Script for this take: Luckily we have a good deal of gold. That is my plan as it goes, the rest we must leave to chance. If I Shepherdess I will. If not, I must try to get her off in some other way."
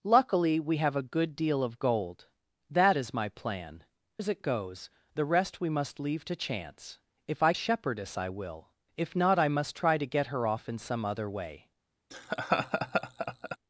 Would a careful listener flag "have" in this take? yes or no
no